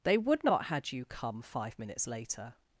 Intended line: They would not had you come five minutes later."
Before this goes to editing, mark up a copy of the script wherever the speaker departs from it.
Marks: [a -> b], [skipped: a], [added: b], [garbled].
They would not had you come five minutes later."